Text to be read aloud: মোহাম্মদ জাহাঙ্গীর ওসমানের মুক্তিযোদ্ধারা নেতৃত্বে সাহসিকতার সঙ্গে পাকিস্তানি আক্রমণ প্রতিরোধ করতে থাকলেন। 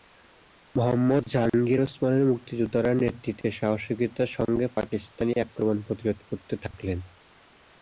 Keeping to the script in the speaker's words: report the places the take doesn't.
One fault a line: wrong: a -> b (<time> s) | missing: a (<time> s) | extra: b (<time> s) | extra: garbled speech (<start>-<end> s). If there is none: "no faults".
no faults